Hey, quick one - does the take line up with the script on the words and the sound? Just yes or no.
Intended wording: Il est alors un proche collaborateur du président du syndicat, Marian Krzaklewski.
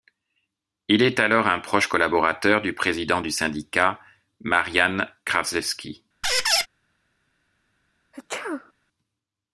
no